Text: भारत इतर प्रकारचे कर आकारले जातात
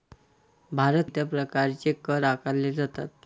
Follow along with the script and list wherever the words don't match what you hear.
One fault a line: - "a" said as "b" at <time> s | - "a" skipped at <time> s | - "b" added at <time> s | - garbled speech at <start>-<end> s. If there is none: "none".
none